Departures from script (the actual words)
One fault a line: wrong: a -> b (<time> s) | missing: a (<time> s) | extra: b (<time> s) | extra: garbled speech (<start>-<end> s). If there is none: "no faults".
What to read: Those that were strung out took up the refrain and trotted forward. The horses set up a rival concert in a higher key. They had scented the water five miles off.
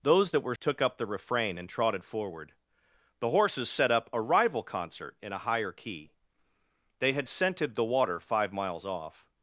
missing: strung out (0.6 s)